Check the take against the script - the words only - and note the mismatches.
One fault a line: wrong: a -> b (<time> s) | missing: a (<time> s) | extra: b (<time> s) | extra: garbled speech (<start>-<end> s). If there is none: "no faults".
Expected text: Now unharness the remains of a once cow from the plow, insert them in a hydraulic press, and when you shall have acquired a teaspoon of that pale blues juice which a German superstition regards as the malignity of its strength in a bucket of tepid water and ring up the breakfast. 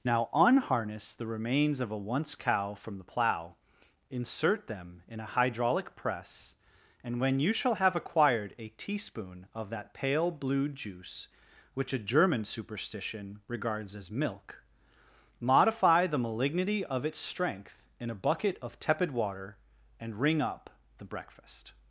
wrong: blues -> blue (10.3 s)
extra: milk modify (14.1 s)